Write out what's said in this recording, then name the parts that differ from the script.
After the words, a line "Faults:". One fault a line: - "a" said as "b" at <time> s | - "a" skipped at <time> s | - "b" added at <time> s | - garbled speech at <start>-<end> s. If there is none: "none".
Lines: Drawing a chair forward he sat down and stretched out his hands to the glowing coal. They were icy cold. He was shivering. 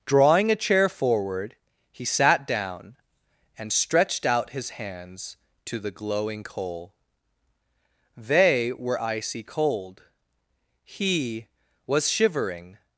Drawing a chair forward he sat down and stretched out his hands to the glowing coal. They were icy cold. He was shivering.
Faults:
none